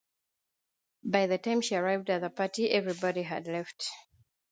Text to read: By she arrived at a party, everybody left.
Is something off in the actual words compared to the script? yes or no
yes